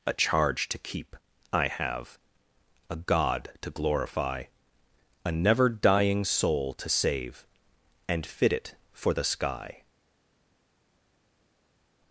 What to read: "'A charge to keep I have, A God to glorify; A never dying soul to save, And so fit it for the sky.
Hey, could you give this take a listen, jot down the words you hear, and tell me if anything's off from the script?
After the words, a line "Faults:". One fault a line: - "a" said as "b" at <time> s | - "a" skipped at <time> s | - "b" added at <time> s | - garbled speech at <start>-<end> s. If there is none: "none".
"'A charge to keep I have, A God to glorify; A never dying soul to save, And fit it for the sky.
Faults:
- "so" skipped at 8.2 s